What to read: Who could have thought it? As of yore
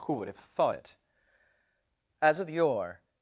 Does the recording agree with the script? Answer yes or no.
no